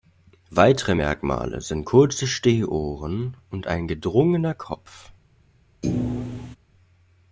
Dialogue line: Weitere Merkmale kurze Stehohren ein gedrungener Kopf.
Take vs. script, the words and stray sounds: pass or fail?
fail